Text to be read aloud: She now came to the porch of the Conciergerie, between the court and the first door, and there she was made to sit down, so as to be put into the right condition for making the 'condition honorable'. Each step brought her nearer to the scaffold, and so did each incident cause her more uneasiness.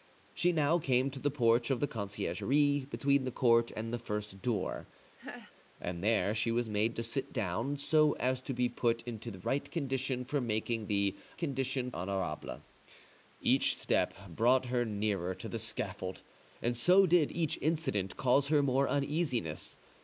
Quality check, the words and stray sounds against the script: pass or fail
fail